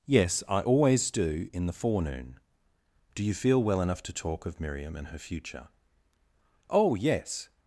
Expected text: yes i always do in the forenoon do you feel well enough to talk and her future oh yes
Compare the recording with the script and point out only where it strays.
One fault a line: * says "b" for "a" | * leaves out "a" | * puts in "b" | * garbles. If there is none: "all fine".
* puts in "of miriam"